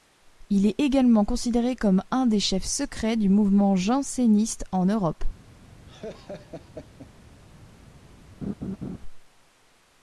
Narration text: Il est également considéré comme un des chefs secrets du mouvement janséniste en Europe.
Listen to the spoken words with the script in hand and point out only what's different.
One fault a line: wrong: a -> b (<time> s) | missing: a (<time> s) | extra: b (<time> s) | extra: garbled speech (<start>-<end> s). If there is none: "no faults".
no faults